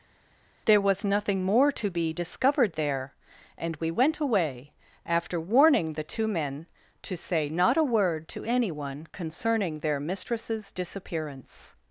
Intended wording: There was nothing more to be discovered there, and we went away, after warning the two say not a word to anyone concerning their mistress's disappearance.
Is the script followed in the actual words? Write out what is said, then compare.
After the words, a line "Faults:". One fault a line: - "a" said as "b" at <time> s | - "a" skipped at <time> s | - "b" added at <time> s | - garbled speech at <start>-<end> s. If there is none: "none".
There was nothing more to be discovered there, and we went away, after warning the two men to say not a word to anyone concerning their mistress's disappearance.
Faults:
- "men to" added at 6.3 s